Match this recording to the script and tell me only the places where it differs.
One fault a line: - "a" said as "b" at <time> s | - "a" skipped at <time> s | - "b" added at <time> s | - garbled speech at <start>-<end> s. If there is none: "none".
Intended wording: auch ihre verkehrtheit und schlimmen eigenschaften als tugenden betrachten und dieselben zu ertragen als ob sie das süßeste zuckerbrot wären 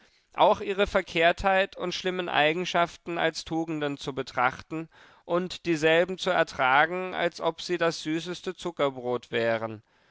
- "zu" added at 4.0 s